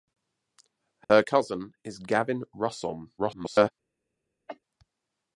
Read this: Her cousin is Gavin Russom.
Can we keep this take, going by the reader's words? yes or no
no